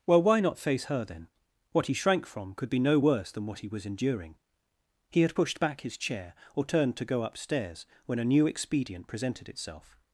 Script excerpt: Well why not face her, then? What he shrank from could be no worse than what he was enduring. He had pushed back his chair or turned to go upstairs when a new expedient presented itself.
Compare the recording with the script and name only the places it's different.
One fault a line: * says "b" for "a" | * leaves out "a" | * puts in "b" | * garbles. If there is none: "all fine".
all fine